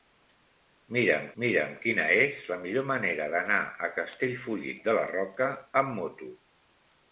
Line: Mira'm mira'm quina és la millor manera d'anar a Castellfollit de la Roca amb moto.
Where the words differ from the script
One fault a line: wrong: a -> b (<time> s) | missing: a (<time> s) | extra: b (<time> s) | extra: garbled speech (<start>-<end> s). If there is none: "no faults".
no faults